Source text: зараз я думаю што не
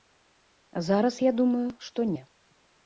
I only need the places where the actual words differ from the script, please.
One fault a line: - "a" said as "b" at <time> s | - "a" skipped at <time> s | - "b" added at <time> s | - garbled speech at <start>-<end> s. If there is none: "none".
none